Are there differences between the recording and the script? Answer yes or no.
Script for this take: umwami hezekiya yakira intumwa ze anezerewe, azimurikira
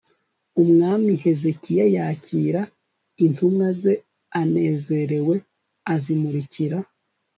no